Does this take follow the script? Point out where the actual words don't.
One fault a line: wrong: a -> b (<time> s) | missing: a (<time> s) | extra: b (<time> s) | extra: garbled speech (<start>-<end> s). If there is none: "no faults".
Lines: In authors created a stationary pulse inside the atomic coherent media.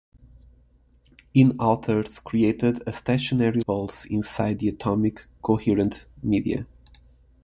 no faults